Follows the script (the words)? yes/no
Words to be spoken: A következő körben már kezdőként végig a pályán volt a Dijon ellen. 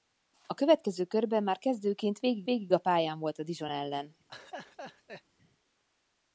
no